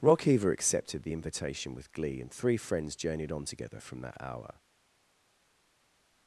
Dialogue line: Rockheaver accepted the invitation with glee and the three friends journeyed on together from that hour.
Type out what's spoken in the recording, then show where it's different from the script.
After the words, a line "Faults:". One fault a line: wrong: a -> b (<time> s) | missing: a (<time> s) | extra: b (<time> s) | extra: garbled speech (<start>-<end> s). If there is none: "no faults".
Rockheaver accepted the invitation with glee and three friends journeyed on together from that hour.
Faults:
missing: the (2.3 s)